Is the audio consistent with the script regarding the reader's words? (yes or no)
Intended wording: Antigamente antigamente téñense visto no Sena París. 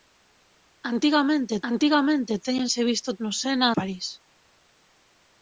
yes